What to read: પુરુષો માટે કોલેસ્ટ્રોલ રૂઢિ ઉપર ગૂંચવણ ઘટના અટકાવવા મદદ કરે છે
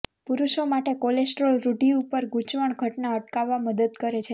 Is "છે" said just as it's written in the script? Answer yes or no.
yes